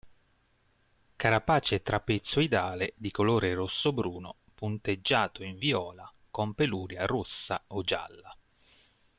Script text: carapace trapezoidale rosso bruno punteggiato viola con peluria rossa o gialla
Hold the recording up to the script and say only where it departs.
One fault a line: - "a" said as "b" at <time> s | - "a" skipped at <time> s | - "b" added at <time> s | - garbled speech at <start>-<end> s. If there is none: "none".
- "di colore" added at 3.0 s
- "in" added at 5.4 s